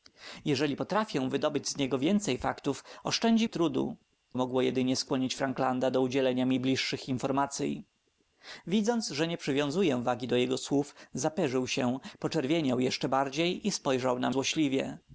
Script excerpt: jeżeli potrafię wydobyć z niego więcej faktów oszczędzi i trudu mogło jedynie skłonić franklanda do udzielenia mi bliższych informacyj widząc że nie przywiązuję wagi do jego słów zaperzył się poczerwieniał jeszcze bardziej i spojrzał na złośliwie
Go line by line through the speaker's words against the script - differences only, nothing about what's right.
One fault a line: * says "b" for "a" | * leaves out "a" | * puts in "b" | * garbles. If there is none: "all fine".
all fine